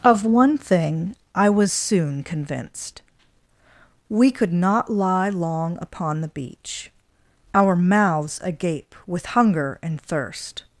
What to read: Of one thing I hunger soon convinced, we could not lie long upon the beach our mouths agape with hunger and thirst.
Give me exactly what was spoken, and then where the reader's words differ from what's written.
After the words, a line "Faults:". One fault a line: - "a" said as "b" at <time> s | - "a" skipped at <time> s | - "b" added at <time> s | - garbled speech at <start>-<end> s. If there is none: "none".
Of one thing I was soon convinced, we could not lie long upon the beach our mouths agape with hunger and thirst.
Faults:
- "hunger" said as "was" at 1.5 s